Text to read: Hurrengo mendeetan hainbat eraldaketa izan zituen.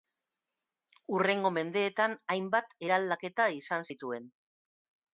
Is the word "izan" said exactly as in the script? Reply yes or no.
yes